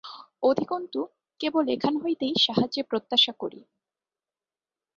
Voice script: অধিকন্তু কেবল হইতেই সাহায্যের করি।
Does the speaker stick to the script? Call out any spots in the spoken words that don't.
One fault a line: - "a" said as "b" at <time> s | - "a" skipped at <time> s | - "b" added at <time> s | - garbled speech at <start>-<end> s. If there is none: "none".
- "এখান" added at 1.7 s
- "প্রত্যাশা" added at 2.9 s